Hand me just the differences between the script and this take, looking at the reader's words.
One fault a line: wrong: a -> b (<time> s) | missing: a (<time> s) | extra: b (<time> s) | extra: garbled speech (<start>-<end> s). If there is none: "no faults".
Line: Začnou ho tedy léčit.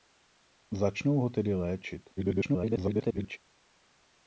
extra: garbled speech (2.2-3.4 s)